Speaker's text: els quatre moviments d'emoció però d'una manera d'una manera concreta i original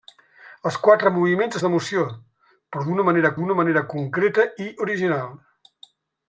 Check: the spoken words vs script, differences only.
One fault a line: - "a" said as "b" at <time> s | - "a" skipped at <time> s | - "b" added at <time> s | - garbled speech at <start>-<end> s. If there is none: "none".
none